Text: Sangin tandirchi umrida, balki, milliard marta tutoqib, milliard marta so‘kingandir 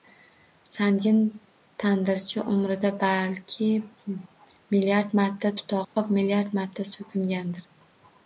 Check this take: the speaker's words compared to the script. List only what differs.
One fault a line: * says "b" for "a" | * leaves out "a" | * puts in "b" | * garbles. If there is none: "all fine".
all fine